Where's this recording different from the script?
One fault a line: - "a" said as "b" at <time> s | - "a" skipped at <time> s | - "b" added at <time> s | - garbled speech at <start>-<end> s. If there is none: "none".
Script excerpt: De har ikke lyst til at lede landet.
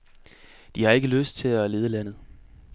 none